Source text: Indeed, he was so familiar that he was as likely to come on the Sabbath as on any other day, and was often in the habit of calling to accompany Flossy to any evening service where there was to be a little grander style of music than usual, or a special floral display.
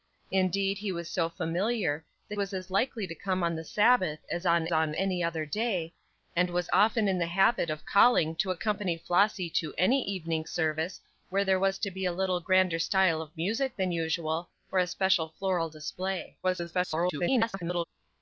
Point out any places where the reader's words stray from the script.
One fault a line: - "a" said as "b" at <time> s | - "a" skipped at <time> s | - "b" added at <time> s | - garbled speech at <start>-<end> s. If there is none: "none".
- "he" skipped at 2.4 s
- "on" added at 4.7 s
- garbled speech at 16.4-17.8 s